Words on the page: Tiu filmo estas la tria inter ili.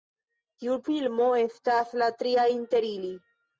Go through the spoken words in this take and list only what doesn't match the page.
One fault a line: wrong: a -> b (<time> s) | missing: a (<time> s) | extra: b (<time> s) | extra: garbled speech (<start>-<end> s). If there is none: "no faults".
no faults